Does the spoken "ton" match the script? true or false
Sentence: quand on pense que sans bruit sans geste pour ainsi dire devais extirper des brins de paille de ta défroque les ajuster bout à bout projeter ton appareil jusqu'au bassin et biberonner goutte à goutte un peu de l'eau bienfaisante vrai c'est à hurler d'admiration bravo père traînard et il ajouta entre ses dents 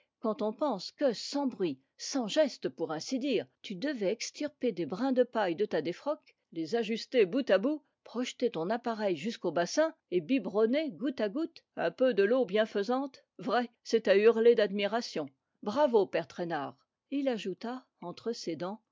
true